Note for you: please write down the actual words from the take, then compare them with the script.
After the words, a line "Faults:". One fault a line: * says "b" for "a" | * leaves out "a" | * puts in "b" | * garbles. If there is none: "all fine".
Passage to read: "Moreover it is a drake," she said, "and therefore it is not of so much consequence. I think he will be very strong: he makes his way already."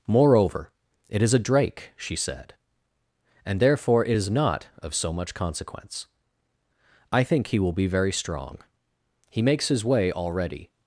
"Moreover it is a drake," she said, "and therefore it is not of so much consequence. I think he will be very strong: he makes his way already."
Faults:
all fine